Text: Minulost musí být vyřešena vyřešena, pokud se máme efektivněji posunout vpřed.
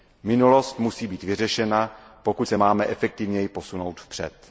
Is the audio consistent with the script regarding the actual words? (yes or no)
no